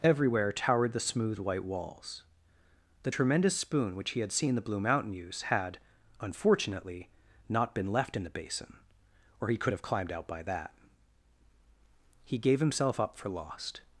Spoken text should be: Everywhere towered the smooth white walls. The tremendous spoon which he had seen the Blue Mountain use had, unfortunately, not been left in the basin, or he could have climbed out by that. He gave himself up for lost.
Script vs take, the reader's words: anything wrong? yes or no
no